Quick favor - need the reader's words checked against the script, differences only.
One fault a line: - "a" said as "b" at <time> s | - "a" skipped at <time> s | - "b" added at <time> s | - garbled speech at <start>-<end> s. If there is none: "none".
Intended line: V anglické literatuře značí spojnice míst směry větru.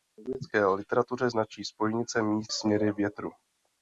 none